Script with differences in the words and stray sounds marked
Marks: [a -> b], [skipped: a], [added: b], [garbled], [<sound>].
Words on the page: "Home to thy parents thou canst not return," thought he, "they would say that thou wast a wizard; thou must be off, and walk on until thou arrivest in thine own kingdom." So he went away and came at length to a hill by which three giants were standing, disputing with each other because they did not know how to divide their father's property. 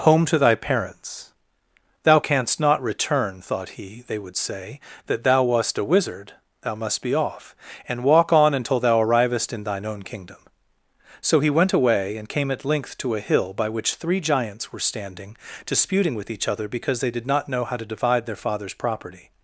"Home to thy parents thou canst not return," thought he, "they would say that thou wast a wizard; thou must be off, and walk on until thou arrivest in thine own kingdom." So he went away and came at length to a hill by which three giants were standing, disputing with each other because they did not know how to divide their father's property.